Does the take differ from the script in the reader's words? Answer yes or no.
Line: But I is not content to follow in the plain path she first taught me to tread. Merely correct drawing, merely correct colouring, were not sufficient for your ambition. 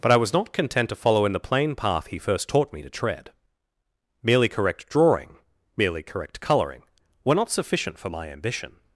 yes